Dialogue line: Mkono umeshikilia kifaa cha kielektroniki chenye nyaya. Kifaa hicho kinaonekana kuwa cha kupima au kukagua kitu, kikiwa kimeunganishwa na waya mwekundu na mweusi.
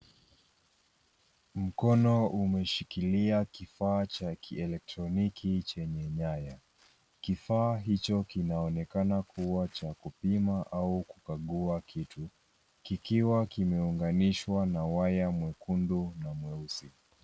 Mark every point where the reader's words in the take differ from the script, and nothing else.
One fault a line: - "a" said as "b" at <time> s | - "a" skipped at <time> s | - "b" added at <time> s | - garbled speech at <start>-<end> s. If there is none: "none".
none